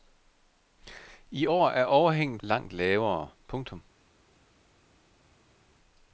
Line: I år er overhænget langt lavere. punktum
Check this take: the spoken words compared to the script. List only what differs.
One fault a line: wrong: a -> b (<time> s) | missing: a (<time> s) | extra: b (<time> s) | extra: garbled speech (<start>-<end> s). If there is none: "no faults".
no faults